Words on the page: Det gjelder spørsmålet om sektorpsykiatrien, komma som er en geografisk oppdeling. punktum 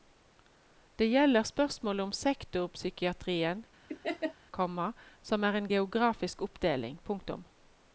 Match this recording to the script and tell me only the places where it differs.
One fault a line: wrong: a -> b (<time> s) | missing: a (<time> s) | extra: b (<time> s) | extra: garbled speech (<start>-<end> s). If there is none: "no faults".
no faults